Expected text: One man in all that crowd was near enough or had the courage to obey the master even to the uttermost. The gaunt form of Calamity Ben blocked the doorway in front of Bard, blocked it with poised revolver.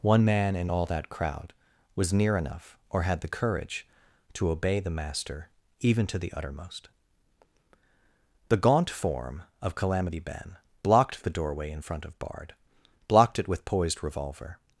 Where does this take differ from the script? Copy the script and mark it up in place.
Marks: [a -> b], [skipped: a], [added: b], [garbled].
One man in all that crowd was near enough or had the courage to obey the master even to the uttermost. The gaunt form of Calamity Ben blocked the doorway in front of Bard, blocked it with poised revolver.